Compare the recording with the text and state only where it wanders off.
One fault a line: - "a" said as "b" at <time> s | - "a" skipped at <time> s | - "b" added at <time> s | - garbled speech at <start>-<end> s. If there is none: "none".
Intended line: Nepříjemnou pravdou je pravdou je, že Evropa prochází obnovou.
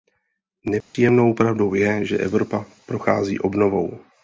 - "pravdou je" skipped at 2.0 s